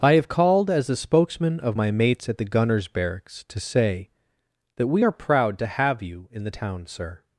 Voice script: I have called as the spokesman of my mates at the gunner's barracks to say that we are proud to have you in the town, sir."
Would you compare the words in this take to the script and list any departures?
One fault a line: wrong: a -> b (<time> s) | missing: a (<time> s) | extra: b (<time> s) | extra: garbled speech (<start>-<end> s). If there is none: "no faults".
no faults